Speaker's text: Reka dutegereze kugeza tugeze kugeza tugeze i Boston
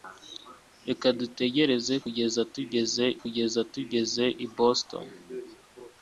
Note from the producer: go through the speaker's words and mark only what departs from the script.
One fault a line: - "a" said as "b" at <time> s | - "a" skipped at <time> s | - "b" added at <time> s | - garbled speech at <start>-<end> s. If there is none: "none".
none